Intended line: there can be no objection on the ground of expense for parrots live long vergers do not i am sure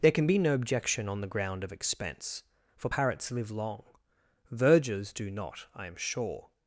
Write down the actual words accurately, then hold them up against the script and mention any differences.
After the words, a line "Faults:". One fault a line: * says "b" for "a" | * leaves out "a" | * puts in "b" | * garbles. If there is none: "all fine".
there can be no objection on the ground of expense for parrots live long vergers do not i am sure
Faults:
all fine